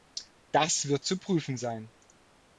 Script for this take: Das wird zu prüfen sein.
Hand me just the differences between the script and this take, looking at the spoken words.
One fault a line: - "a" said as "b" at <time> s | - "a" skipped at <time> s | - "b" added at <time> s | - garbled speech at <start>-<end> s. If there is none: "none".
none